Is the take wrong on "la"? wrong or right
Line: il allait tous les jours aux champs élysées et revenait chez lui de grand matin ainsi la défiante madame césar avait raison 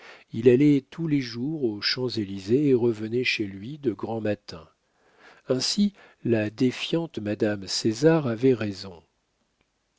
right